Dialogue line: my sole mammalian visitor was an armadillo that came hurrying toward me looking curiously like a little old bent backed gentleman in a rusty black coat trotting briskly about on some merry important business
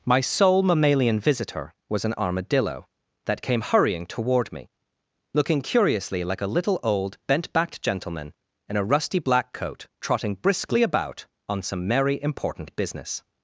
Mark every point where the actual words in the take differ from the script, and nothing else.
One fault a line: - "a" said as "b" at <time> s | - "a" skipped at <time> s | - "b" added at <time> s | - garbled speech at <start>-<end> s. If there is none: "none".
none